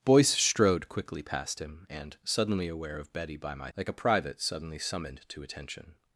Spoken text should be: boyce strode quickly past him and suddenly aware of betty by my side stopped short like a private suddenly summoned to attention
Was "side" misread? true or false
true